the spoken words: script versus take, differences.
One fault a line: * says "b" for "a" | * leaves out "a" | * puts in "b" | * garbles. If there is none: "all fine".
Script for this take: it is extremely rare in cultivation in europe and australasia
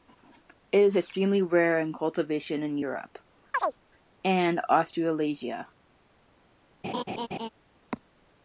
all fine